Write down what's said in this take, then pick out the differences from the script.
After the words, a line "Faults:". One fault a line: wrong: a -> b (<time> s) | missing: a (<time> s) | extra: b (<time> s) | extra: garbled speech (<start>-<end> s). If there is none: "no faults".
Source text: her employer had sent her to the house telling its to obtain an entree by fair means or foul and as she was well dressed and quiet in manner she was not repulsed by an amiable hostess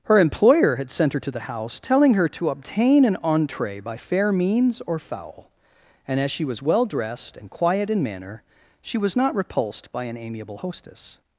her employer had sent her to the house telling her to obtain an entree by fair means or foul and as she was well dressed and quiet in manner she was not repulsed by an amiable hostess
Faults:
wrong: its -> her (2.1 s)